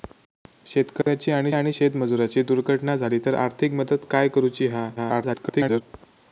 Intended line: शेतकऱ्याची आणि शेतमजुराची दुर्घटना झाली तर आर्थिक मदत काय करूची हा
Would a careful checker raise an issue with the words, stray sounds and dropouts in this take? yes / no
yes